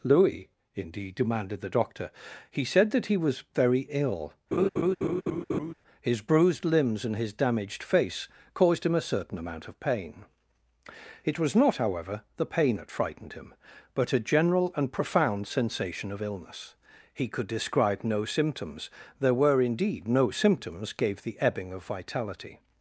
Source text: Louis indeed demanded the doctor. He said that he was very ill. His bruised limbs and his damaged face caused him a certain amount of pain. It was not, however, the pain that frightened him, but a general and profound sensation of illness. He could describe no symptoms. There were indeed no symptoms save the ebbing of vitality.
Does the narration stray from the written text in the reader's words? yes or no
yes